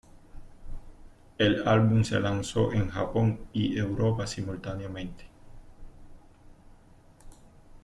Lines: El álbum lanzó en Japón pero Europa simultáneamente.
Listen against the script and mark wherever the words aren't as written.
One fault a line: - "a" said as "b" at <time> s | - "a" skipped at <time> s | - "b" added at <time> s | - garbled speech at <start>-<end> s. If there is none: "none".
- "se" added at 2.0 s
- "pero" said as "y" at 3.5 s